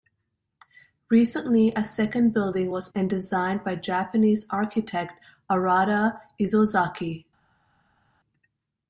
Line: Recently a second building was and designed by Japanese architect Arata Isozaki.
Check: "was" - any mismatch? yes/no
no